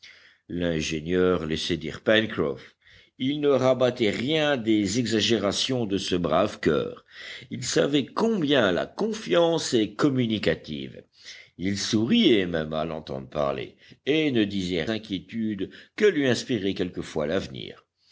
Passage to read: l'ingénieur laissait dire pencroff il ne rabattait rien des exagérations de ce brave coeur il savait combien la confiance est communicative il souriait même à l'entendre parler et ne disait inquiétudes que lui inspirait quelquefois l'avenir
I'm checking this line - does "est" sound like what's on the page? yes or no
yes